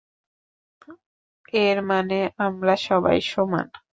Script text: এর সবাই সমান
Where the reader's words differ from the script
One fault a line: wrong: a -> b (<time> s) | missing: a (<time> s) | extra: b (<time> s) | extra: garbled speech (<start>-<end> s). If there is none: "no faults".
extra: মানে আমরা (1.9 s)